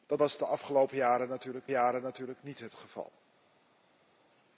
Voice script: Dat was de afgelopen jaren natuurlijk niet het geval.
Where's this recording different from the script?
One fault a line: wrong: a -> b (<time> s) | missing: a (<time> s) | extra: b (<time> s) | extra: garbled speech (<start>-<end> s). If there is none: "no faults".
extra: jaren natuurlijk (1.7 s)